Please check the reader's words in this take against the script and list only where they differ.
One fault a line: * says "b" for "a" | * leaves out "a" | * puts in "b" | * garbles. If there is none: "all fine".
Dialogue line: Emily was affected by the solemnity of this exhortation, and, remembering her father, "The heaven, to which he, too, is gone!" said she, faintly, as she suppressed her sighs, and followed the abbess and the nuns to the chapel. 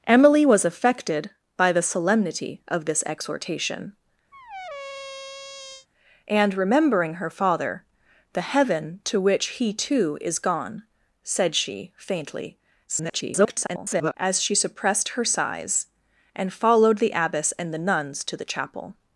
* garbles